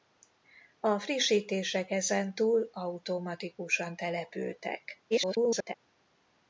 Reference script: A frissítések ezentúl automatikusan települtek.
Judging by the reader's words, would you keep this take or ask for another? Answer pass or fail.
fail